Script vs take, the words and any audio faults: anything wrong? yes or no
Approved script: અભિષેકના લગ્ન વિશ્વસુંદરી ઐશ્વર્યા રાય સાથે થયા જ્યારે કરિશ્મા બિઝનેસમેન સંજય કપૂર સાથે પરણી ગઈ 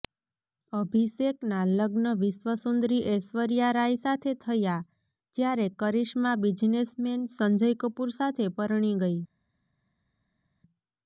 no